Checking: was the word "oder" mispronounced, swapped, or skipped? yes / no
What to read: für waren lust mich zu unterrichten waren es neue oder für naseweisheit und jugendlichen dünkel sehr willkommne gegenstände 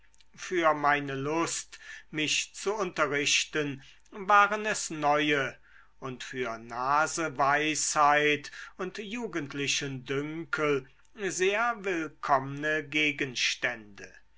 yes